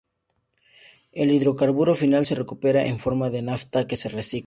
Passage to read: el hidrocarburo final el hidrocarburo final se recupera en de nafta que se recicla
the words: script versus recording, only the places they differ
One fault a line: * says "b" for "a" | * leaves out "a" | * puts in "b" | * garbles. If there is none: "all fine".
* leaves out "el hidrocarburo final"
* puts in "forma"